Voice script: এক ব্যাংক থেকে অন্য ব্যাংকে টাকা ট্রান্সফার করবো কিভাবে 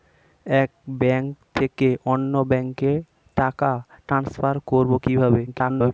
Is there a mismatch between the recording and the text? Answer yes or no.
yes